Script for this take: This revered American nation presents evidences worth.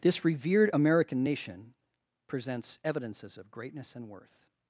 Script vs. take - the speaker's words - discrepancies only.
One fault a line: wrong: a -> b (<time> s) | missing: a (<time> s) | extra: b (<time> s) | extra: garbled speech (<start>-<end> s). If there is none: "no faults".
extra: of greatness and (3.4 s)